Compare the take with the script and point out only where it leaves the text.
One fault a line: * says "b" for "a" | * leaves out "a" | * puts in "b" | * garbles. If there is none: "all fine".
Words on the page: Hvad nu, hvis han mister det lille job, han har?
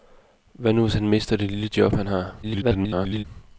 * garbles